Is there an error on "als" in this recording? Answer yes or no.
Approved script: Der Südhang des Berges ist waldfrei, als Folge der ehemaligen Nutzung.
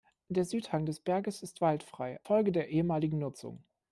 yes